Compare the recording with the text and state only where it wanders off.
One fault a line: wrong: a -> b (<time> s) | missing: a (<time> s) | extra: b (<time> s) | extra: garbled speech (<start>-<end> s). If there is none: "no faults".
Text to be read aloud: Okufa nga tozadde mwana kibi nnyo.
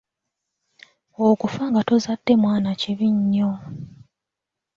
no faults